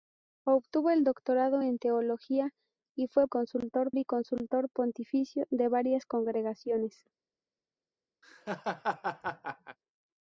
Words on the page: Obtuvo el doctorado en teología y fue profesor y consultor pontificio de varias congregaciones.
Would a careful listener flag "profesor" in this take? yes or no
yes